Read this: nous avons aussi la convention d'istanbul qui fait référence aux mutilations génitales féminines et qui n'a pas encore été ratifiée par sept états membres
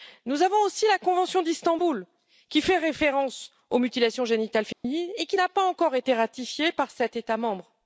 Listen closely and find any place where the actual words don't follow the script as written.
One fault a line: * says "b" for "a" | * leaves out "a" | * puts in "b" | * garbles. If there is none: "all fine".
all fine